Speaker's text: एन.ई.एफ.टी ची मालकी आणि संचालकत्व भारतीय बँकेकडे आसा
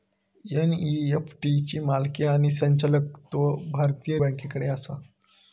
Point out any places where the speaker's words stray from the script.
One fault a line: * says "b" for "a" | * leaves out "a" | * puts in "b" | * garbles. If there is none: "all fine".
all fine